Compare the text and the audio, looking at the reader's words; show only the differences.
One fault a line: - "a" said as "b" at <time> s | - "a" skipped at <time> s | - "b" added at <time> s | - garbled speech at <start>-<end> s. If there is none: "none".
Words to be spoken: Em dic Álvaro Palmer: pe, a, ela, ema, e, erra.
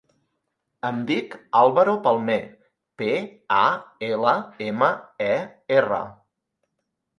none